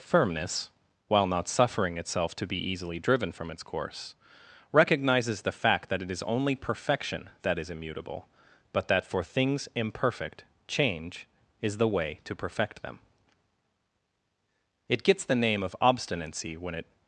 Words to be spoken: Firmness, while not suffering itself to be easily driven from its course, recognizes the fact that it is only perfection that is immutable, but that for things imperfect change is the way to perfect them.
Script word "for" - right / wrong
right